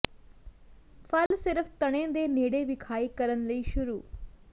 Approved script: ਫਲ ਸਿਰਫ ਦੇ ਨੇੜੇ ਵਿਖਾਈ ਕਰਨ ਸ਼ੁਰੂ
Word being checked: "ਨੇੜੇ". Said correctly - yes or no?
yes